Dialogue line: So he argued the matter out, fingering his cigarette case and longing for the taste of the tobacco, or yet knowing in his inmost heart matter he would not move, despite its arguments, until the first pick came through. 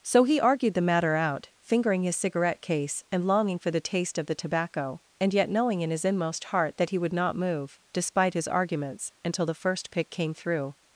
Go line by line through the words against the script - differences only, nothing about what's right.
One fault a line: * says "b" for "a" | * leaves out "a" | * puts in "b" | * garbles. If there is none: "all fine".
* says "and" for "or"
* says "that" for "matter"
* says "his" for "its"